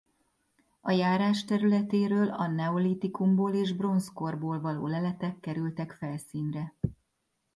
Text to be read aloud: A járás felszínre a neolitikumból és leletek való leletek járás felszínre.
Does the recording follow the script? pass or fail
fail